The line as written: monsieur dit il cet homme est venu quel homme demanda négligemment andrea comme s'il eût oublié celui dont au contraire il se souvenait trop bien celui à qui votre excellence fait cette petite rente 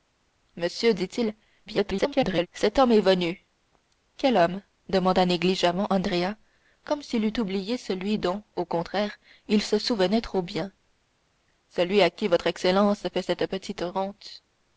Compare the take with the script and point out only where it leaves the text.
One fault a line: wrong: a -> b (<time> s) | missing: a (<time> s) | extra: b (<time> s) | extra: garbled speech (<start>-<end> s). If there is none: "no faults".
extra: garbled speech (1.7-2.5 s)